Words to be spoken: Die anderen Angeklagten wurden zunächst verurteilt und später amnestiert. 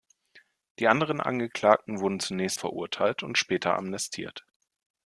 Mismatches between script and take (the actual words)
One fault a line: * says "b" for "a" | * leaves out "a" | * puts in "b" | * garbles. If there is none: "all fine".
all fine